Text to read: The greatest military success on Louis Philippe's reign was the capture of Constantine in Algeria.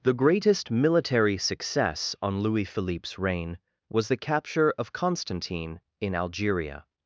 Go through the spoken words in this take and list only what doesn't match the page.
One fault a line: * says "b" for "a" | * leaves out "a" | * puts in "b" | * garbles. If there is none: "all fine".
all fine